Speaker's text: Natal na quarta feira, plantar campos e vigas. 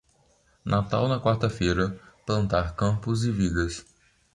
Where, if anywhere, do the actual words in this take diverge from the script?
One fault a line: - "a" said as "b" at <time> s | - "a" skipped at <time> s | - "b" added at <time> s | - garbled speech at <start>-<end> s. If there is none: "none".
none